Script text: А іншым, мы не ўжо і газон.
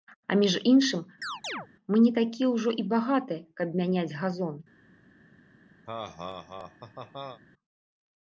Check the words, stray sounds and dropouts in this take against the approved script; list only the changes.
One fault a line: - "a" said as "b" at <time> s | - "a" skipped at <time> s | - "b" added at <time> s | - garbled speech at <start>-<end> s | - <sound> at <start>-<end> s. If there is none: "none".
- "між" added at 0.4 s
- chirp at 1.2-1.7 s
- "такія" added at 2.1 s
- "багатыя каб мяняць" added at 2.9 s
- laugh at 5.9-7.4 s